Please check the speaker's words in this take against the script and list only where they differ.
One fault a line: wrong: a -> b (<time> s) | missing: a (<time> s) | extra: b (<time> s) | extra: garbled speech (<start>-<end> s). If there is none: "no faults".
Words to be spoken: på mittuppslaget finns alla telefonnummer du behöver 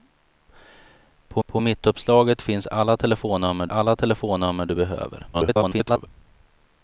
extra: på (1.5 s)
extra: alla telefonnummer (3.6 s)
extra: garbled speech (5.3-6.1 s)